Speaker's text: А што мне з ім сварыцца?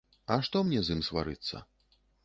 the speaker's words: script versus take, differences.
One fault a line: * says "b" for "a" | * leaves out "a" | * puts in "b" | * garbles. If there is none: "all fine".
all fine